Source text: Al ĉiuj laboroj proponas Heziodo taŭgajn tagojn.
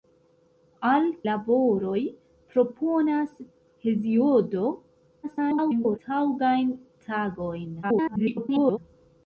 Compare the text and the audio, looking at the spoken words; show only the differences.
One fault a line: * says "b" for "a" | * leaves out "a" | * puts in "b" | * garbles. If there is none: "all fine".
* leaves out "ĉiuj"
* garbles
* garbles